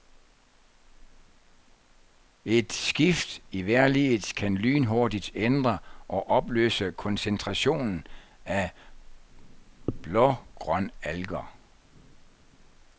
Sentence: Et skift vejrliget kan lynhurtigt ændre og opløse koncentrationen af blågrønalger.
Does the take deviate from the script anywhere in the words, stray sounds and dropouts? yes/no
yes